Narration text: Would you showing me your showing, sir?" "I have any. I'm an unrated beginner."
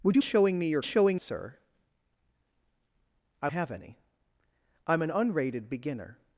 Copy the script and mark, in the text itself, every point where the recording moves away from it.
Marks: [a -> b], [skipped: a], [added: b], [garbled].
Would you showing me your showing, sir?" "I have any. I'm an unrated beginner."